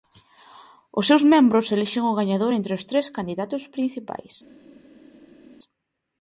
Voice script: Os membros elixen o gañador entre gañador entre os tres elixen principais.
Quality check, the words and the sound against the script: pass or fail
fail